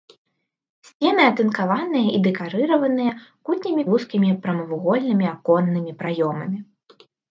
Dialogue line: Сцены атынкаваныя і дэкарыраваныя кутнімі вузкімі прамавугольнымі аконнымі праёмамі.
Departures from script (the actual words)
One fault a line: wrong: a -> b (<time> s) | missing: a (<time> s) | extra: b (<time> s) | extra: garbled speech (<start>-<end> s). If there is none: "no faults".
no faults